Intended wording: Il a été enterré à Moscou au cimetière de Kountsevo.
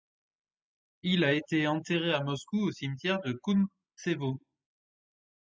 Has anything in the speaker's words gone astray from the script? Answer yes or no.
no